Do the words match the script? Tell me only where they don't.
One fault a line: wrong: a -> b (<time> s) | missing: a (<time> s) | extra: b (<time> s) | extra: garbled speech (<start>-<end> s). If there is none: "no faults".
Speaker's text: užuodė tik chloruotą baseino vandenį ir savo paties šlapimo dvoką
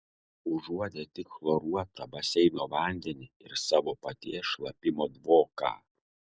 no faults